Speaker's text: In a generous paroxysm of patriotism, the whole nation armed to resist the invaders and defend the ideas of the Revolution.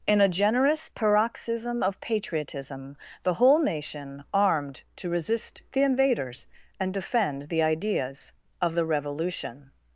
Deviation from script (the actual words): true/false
false